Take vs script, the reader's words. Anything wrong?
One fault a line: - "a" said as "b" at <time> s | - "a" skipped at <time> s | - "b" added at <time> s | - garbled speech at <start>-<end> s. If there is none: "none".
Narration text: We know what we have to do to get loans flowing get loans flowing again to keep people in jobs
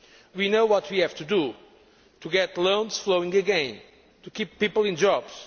- "get loans flowing" skipped at 3.4 s